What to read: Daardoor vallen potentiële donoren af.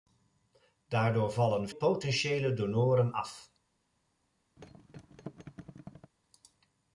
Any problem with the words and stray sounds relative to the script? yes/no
yes